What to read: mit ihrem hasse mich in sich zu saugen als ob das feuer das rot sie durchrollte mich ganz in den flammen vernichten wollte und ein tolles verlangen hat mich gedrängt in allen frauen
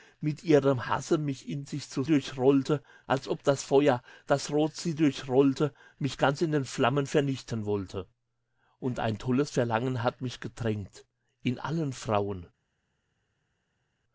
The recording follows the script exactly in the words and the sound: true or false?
false